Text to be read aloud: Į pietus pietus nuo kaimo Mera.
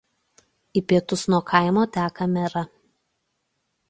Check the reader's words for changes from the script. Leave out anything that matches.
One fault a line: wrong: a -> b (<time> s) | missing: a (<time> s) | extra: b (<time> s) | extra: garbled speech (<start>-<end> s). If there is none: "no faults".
missing: pietus (1.2 s)
extra: teka (2.0 s)